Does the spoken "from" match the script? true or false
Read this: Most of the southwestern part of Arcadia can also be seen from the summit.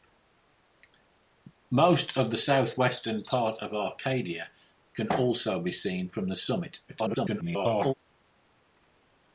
true